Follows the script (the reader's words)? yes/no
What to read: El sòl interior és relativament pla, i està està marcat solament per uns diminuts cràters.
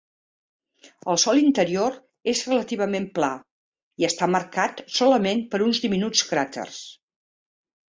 no